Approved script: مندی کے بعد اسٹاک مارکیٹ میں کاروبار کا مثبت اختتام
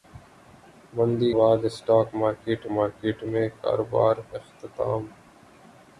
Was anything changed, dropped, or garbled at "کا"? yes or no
yes